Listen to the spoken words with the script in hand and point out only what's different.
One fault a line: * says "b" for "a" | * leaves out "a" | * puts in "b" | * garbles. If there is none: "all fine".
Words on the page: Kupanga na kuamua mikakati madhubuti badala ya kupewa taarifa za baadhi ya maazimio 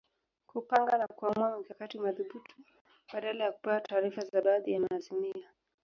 all fine